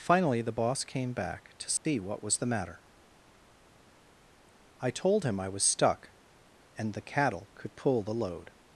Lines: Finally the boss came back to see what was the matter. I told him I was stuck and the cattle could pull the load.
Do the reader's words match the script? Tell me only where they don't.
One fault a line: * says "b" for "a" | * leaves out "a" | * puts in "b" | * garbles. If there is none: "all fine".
all fine